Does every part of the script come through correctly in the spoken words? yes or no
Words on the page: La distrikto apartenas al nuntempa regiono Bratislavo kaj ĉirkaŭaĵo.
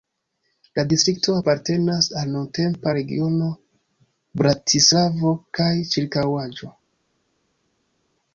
yes